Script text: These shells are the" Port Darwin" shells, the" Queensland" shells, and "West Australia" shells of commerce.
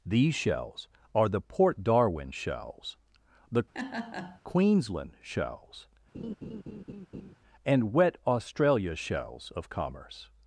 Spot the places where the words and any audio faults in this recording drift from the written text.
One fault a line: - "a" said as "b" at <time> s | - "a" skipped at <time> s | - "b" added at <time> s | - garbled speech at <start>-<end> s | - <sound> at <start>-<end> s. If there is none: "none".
- laugh at 3.7-4.4 s
- laugh at 6.1-7.4 s
- "West" said as "Wet" at 7.9 s